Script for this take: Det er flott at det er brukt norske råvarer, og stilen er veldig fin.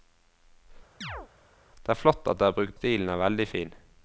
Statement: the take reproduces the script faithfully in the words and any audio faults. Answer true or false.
false